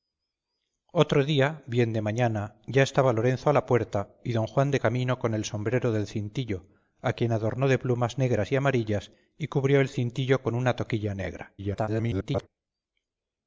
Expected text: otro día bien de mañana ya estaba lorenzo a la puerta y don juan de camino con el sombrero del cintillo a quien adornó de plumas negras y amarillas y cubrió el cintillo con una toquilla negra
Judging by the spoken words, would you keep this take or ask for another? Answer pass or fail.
fail